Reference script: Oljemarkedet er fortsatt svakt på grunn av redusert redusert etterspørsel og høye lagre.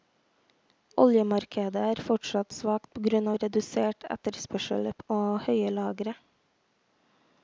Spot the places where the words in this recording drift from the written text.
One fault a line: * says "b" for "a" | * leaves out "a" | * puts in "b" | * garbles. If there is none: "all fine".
* leaves out "redusert"